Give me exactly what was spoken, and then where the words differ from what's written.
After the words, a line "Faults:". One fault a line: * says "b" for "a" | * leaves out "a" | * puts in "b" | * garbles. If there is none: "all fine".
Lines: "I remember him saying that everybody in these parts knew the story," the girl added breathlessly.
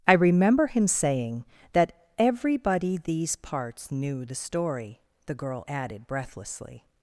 "I remember him saying that everybody these parts knew the story," the girl added breathlessly.
Faults:
* leaves out "in"